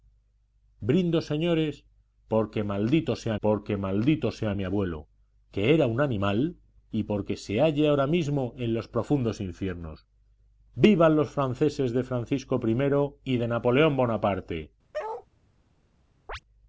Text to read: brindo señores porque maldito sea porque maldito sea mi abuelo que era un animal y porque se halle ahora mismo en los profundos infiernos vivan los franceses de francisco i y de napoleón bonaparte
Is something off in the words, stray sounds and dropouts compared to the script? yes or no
yes